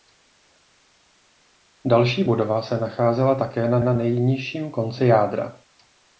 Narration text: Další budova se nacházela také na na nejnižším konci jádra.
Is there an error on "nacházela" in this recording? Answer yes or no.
no